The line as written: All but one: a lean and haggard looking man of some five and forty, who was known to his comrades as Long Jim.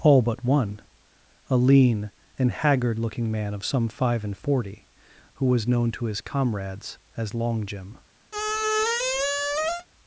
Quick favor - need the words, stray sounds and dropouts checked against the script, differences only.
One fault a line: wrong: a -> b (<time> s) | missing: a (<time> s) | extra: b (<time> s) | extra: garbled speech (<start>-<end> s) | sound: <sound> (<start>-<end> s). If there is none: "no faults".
sound: squeak (8.3-9.9 s)